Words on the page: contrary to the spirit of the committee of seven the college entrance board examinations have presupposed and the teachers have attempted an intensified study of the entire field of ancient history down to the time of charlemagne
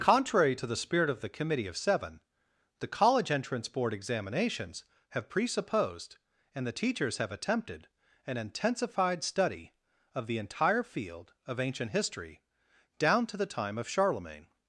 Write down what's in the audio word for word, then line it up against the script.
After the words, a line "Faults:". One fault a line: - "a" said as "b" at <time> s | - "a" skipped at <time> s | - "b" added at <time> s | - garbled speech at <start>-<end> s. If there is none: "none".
contrary to the spirit of the committee of seven the college entrance board examinations have presupposed and the teachers have attempted an intensified study of the entire field of ancient history down to the time of charlemagne
Faults:
none